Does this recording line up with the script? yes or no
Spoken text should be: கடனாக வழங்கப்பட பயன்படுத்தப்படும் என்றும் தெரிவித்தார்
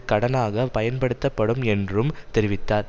no